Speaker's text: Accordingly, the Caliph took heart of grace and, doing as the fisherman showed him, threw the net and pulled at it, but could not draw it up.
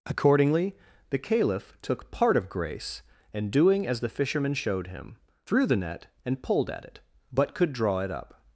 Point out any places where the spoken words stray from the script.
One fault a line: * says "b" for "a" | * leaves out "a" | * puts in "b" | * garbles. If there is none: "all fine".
* says "part" for "heart"
* leaves out "not"